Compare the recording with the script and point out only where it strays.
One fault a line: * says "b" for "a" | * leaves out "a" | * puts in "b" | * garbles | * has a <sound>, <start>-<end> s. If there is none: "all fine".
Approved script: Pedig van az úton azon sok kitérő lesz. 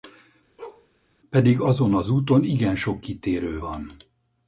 * has a bark, 0.6-0.9 s
* says "azon" for "van"
* says "igen" for "azon"
* says "van" for "lesz"